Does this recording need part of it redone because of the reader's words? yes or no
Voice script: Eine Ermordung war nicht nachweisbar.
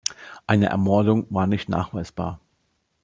no